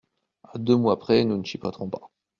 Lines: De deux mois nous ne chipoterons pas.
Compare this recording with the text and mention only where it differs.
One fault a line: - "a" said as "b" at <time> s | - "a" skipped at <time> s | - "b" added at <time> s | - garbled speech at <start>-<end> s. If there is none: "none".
- "De" said as "À" at 0.4 s
- "près" added at 1.0 s